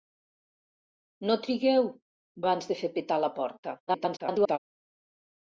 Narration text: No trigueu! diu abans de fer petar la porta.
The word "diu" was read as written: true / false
false